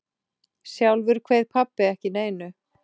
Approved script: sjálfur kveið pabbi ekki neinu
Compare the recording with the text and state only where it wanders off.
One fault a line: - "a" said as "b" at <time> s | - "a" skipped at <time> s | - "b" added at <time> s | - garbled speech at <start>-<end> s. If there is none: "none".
none